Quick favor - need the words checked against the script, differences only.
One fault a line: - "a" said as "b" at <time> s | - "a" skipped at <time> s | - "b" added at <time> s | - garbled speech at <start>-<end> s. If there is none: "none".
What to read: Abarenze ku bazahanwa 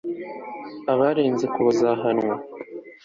none